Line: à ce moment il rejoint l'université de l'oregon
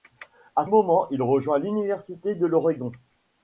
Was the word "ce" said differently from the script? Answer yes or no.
yes